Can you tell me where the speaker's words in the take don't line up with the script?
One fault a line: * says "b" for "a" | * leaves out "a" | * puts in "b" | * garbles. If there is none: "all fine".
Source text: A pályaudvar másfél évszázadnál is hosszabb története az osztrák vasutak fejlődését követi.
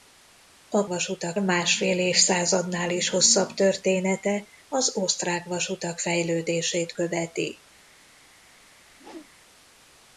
* says "vasutak" for "pályaudvar"